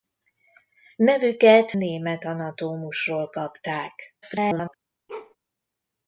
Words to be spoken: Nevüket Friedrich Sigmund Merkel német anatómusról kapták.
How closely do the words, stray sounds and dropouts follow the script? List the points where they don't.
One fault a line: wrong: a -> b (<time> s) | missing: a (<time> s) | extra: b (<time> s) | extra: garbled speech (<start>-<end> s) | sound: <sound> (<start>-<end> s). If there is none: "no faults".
missing: Friedrich Sigmund Merkel (1.7 s)
extra: garbled speech (4.2-4.7 s)
sound: bark (5.1-5.4 s)